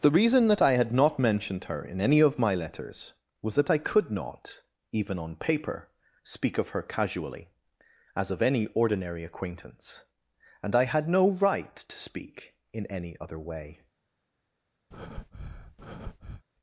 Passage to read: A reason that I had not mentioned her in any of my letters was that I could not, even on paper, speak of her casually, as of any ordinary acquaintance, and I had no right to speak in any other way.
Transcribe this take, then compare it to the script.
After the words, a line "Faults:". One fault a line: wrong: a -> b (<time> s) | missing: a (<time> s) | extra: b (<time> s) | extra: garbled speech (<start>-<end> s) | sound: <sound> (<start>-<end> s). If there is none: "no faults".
The reason that I had not mentioned her in any of my letters was that I could not, even on paper, speak of her casually, as of any ordinary acquaintance, and I had no right to speak in any other way.
Faults:
wrong: A -> The (0.0 s)
sound: breath (14.9-16.4 s)